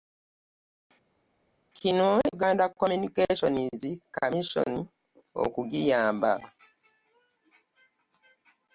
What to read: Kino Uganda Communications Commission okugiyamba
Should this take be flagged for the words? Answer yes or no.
no